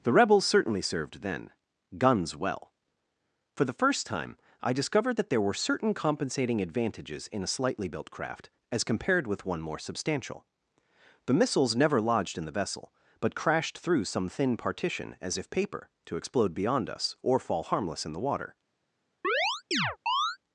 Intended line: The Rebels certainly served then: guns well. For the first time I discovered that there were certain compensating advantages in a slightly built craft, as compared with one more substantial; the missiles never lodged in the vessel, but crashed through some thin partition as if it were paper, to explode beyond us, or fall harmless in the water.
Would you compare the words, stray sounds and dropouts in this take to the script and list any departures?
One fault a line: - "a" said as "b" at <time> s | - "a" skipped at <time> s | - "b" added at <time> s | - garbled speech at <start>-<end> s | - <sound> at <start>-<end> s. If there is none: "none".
- "it were" skipped at 15.5 s
- chirp at 19.2-20.4 s